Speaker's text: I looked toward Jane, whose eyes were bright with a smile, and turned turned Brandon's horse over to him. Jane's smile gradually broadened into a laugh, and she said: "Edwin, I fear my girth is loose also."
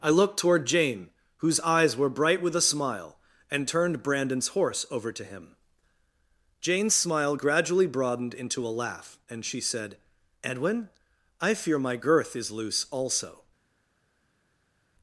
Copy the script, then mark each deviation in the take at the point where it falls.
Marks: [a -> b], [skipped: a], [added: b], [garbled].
I looked toward Jane, whose eyes were bright with a smile, and turned [skipped: turned] Brandon's horse over to him. Jane's smile gradually broadened into a laugh, and she said: "Edwin, I fear my girth is loose also."